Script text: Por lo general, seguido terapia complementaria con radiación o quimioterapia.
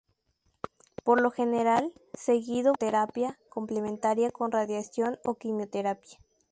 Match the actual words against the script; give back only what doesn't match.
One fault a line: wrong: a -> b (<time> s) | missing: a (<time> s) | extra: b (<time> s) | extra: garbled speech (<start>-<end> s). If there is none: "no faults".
no faults